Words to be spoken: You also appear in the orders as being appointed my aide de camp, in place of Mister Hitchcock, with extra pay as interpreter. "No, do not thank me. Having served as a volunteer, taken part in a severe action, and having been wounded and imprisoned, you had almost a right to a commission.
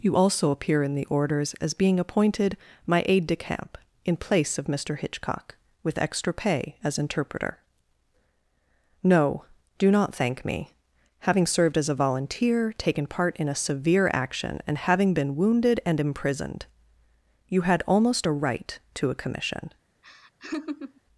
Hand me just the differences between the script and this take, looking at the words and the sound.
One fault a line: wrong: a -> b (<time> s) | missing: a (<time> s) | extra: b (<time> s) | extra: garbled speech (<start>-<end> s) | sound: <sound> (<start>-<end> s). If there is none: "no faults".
sound: laugh (20.0-21.0 s)